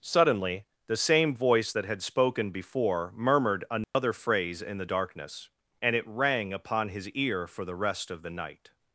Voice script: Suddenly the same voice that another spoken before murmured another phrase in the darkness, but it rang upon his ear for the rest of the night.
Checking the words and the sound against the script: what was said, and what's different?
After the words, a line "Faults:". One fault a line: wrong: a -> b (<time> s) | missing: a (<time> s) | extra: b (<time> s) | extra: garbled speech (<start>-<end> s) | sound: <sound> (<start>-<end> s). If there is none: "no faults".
Suddenly the same voice that had spoken before murmured another phrase in the darkness, and it rang upon his ear for the rest of the night.
Faults:
wrong: another -> had (1.8 s)
sound: dropout (3.8-3.9 s)
wrong: but -> and (5.8 s)